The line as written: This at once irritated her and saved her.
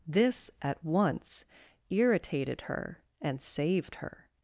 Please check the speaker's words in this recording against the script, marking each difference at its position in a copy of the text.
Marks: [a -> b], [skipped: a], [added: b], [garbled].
This at once irritated her and saved her.